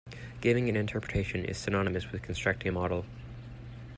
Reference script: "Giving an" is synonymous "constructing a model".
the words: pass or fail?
fail